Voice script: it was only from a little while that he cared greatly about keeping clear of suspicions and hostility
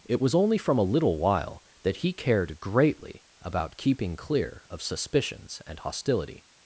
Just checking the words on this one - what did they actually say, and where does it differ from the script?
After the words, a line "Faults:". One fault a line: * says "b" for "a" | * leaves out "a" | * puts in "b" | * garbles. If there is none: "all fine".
it was only from a little while that he cared greatly about keeping clear of suspicions and hostility
Faults:
all fine